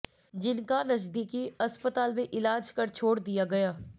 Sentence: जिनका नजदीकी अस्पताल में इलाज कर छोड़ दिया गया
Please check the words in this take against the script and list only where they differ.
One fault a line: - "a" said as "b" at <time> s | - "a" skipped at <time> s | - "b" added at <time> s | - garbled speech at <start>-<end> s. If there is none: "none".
none